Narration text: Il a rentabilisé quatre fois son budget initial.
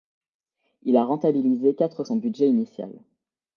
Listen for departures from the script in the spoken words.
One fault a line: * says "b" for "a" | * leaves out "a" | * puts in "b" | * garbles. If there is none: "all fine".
* leaves out "fois"